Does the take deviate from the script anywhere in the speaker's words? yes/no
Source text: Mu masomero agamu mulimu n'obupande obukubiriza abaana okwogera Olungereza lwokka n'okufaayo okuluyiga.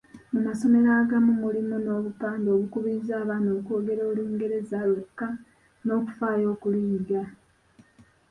no